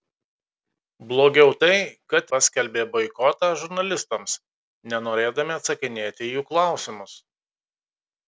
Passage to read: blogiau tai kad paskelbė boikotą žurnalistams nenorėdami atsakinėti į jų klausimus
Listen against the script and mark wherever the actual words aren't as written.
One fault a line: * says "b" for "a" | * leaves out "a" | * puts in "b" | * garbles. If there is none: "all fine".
all fine